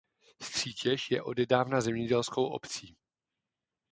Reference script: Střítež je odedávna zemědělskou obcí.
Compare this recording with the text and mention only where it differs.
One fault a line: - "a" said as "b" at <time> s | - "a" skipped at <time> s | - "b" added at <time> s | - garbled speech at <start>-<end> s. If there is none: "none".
none